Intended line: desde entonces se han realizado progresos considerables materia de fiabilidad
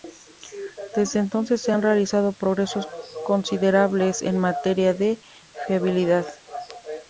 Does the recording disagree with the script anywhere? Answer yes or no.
yes